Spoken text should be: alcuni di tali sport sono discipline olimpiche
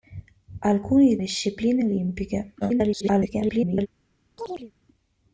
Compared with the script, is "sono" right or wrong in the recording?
wrong